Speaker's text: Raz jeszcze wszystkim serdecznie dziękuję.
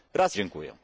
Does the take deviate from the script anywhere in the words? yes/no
yes